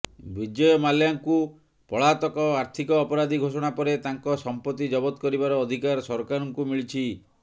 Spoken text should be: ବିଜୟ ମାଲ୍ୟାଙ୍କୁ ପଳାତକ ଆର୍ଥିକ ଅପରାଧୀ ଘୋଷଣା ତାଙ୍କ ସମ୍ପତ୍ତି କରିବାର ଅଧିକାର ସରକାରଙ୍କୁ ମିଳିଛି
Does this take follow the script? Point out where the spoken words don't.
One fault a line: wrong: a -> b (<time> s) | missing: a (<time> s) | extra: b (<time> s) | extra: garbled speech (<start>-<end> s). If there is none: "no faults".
extra: ପରେ (3.8 s)
extra: ଜବତ (5.0 s)